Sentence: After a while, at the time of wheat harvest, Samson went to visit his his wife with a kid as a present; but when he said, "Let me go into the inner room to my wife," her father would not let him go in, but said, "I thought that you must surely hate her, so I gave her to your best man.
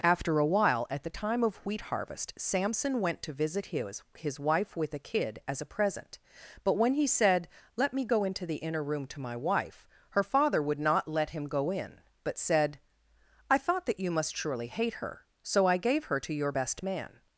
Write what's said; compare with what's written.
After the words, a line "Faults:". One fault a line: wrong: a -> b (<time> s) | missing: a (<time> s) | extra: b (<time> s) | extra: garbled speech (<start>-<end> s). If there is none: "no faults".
After a while, at the time of wheat harvest, Samson went to visit his his wife with a kid as a present; but when he said, "Let me go into the inner room to my wife," her father would not let him go in, but said, "I thought that you must surely hate her, so I gave her to your best man.
Faults:
no faults